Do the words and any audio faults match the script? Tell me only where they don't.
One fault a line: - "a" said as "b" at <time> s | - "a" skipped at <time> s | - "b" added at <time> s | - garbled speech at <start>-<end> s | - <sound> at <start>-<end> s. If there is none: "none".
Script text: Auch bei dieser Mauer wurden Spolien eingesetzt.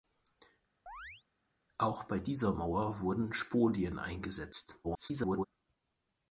- chirp at 0.9-1.2 s
- garbled speech at 4.8-5.5 s